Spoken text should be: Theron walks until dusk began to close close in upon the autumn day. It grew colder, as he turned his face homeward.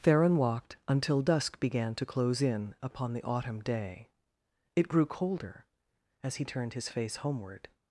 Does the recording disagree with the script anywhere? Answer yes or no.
yes